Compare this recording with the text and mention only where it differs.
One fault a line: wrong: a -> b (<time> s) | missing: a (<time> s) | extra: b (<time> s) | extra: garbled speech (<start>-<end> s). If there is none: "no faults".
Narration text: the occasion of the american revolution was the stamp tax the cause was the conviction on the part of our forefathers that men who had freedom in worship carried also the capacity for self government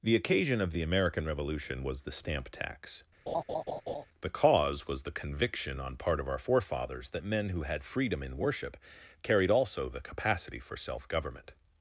missing: the (6.0 s)